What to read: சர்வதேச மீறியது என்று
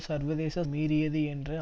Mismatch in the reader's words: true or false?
false